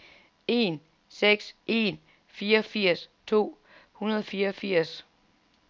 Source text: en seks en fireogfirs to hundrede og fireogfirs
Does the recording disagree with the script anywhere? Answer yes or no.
no